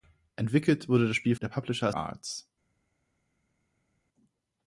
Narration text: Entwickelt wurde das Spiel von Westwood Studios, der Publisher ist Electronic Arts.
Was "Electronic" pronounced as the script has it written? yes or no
no